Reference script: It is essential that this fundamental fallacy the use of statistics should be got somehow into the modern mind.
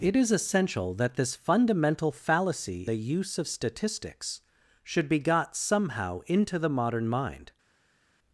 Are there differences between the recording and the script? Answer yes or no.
no